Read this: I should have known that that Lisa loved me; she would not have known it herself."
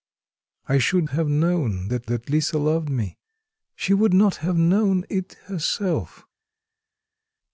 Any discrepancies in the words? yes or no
no